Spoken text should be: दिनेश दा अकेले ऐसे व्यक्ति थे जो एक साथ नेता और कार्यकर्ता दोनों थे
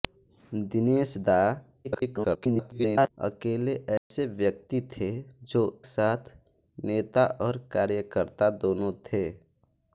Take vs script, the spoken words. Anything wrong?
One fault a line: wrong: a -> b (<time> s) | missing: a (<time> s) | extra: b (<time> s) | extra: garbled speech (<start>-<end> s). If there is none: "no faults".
extra: garbled speech (1.8-3.1 s)
missing: एक (5.6 s)